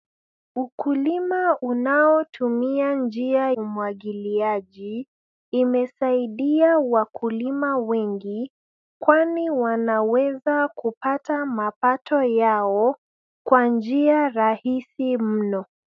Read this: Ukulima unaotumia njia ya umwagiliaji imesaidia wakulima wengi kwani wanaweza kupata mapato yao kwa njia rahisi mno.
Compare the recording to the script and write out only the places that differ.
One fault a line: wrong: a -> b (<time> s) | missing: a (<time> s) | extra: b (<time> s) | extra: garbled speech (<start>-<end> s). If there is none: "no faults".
missing: ya (3.5 s)